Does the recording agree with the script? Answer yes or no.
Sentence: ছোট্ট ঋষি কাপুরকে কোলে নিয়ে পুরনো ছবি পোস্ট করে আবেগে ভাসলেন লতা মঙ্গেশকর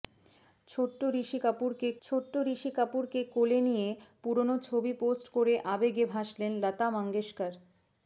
no